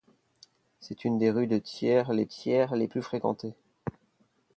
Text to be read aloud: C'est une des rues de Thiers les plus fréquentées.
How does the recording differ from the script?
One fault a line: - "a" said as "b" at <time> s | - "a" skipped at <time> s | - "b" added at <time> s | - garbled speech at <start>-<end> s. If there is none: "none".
- "Thiers les" added at 2.2 s